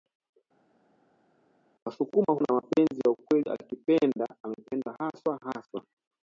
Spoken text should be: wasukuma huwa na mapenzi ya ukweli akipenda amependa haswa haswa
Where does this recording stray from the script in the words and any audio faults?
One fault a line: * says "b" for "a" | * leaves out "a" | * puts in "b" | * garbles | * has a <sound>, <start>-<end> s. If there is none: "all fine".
* leaves out "huwa"